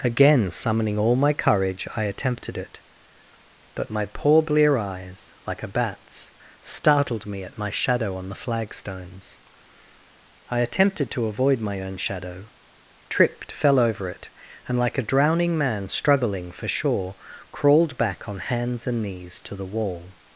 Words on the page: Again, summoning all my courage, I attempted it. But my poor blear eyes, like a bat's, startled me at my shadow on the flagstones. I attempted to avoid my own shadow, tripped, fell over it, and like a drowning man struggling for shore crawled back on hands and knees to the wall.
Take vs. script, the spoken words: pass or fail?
pass